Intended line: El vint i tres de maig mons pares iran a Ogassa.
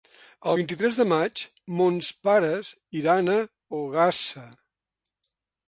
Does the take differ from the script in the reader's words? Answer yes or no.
no